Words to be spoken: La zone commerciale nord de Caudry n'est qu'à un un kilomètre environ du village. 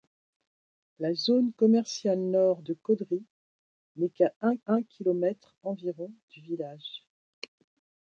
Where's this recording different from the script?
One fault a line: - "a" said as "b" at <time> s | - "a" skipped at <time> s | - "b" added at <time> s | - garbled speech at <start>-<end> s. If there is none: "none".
none